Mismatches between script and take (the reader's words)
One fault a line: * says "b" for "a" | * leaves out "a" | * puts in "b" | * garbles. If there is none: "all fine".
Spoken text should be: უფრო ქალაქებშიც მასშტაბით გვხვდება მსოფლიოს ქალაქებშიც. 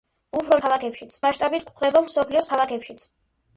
all fine